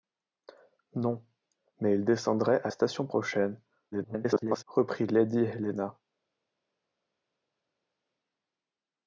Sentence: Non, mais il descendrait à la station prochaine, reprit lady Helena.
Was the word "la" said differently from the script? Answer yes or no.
yes